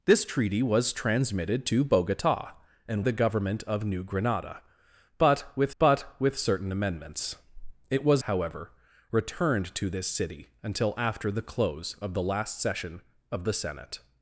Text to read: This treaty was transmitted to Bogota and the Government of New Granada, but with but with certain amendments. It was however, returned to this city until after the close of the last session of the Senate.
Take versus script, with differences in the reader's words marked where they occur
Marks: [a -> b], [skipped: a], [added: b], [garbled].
This treaty was transmitted to Bogota and the Government of New Granada, but with but with certain amendments. It was however, returned to this city until after the close of the last session of the Senate.